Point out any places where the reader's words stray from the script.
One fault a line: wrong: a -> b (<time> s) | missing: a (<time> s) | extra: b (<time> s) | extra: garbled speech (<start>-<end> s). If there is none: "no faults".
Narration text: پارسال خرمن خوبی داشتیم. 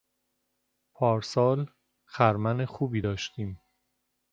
no faults